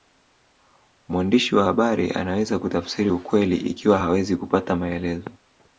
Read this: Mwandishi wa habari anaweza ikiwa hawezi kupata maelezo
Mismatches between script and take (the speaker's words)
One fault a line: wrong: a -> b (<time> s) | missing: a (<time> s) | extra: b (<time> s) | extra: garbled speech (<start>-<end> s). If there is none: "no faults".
extra: kutafsiri ukweli (2.6 s)